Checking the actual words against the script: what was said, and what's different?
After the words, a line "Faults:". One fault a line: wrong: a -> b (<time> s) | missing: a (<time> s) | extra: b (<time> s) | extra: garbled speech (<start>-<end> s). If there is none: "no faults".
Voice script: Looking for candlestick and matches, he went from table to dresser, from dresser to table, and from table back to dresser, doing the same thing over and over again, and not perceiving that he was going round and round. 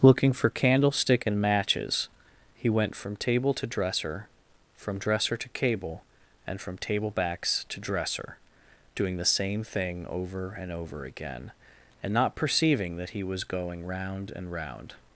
Looking for candlestick and matches, he went from table to dresser, from dresser to cable, and from table backs to dresser, doing the same thing over and over again, and not perceiving that he was going round and round.
Faults:
wrong: table -> cable (5.5 s)
wrong: back -> backs (7.1 s)